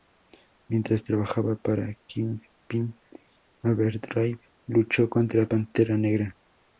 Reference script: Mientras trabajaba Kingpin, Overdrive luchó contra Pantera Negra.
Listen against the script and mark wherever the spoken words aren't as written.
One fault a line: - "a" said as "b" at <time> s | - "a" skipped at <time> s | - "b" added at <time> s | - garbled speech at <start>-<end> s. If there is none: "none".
- "para" added at 1.5 s